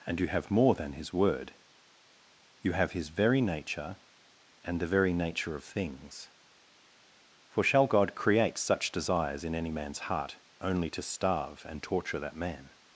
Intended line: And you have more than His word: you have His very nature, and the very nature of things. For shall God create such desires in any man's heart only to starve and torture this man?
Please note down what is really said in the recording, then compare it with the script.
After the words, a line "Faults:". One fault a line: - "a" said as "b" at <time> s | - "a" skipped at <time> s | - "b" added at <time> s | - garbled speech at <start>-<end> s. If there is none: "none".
And you have more than His word: you have His very nature, and the very nature of things. For shall God create such desires in any man's heart only to starve and torture that man?
Faults:
- "this" said as "that" at 12.2 s